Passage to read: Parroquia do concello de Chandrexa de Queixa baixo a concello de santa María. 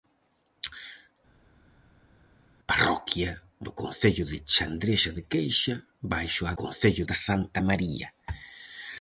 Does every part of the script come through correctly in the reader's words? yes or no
yes